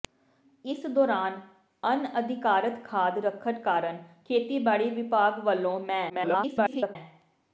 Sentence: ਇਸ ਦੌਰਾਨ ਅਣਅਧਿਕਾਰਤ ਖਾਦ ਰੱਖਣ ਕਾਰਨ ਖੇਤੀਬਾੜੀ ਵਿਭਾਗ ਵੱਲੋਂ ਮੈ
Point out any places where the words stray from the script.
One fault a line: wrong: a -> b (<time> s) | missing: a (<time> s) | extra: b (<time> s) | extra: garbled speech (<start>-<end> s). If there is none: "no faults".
extra: garbled speech (6.1-7.0 s)